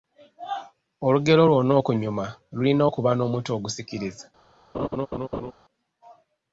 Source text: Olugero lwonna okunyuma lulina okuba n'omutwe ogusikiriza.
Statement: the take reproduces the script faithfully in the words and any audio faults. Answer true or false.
false